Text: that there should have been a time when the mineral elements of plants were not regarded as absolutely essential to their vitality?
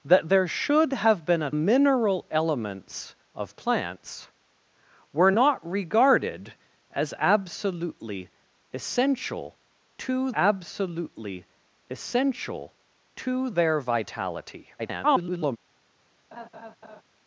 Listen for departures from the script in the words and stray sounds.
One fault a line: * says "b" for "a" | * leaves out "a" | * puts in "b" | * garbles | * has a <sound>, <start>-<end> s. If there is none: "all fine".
* leaves out "time when the"
* puts in "absolutely essential to"
* garbles
* has a laugh, 16.3-17.0 s